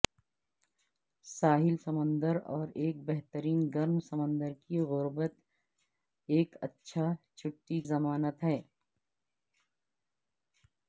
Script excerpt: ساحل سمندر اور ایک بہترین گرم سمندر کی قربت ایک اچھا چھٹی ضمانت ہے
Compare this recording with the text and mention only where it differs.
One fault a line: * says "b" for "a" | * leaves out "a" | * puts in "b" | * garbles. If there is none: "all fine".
all fine